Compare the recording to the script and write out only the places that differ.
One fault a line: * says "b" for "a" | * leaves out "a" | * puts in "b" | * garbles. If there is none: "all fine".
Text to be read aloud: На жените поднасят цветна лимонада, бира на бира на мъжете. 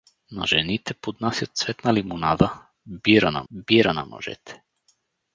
all fine